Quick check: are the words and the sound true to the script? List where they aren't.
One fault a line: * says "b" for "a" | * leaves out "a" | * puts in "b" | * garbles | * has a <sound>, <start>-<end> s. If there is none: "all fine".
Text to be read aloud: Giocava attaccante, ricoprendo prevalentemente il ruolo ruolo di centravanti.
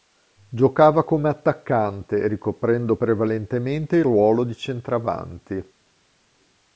* puts in "come"
* leaves out "ruolo"